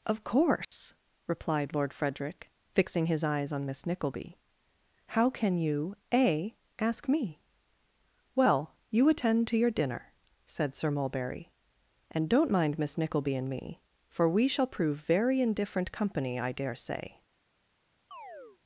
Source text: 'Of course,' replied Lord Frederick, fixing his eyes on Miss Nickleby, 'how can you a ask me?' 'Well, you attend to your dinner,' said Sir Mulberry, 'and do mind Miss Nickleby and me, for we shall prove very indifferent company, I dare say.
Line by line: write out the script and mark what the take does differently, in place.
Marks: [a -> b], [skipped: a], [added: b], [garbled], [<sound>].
'Of course,' [dropout] replied Lord Frederick, fixing his eyes on Miss Nickleby, 'how can you a ask me?' 'Well, you attend to your dinner,' said Sir Mulberry, 'and [do -> don't] mind Miss Nickleby and me, for we shall prove very indifferent company, I dare say. [chirp]